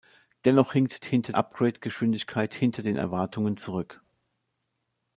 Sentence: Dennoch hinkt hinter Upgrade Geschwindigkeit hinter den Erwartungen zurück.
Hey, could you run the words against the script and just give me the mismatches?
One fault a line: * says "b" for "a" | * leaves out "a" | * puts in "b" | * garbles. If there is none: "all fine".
all fine